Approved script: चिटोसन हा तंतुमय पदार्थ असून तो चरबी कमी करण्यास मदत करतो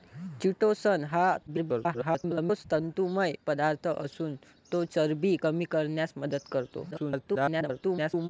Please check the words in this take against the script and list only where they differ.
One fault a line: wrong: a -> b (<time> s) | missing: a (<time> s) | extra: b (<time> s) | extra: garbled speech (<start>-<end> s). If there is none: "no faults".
extra: garbled speech (1.5-2.6 s)
extra: garbled speech (6.9-8.3 s)